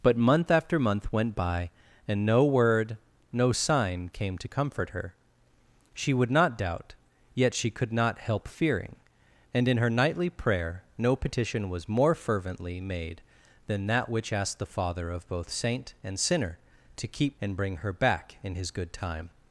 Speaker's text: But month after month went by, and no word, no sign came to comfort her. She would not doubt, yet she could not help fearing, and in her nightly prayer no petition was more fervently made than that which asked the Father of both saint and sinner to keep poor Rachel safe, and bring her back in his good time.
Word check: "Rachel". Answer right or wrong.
wrong